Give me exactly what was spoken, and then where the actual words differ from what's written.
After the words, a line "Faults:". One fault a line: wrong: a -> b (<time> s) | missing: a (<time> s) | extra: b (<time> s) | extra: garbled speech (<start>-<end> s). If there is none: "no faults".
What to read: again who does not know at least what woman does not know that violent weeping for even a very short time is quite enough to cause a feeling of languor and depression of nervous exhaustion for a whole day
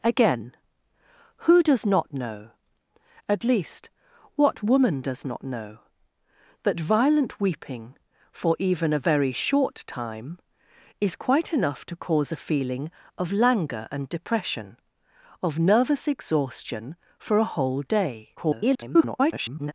again who does not know at least what woman does not know that violent weeping for even a very short time is quite enough to cause a feeling of languor and depression of nervous exhaustion for a whole day [garbled]
Faults:
extra: garbled speech (18.4-19.7 s)